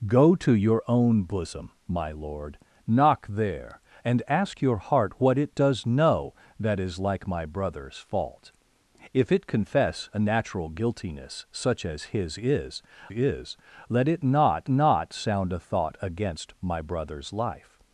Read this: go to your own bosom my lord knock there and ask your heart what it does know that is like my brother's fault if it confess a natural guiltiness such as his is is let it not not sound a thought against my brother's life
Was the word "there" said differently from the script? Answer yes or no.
no